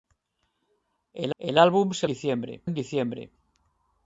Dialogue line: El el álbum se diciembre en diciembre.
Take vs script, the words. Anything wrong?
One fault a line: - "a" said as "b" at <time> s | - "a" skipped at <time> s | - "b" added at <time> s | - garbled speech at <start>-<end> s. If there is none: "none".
none